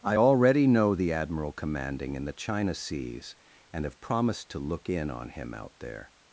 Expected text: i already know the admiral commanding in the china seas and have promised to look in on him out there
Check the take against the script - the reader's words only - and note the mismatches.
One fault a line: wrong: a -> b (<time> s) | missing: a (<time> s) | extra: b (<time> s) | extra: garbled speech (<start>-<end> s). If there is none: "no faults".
no faults